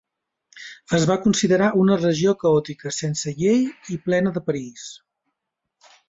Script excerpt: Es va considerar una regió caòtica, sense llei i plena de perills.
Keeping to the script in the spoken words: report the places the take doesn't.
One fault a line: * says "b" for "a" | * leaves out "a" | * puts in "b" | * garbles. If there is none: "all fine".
all fine